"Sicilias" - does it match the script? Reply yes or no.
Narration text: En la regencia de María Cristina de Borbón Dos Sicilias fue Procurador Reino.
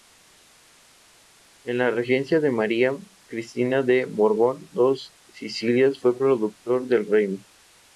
yes